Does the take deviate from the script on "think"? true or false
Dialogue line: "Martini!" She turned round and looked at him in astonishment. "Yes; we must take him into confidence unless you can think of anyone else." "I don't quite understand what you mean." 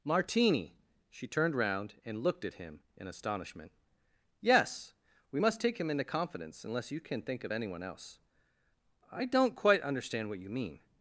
false